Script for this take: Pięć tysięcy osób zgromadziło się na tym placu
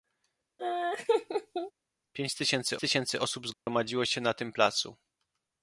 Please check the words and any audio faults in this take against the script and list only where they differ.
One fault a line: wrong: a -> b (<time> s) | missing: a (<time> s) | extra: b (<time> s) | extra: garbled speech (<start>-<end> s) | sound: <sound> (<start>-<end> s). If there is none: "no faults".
sound: laugh (0.6-1.7 s)
extra: tysięcy (2.8 s)
sound: dropout (3.5-3.7 s)